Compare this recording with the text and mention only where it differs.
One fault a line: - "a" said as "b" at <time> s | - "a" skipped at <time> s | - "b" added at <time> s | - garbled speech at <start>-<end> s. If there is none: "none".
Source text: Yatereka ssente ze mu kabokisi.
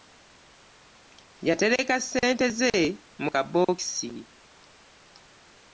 none